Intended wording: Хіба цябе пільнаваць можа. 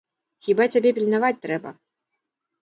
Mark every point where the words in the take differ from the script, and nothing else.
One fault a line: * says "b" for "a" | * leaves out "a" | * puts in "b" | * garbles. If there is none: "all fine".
* says "трэба" for "можа"